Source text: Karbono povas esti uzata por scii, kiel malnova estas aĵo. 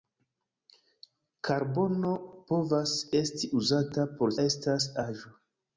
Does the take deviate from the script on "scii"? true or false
true